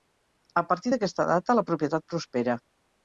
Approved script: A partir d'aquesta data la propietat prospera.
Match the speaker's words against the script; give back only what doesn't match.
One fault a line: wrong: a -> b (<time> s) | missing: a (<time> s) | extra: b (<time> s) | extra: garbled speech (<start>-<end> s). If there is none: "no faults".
no faults